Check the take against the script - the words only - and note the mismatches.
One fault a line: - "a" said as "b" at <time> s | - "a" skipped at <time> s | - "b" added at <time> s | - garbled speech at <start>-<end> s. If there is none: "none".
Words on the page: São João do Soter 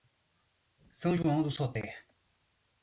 none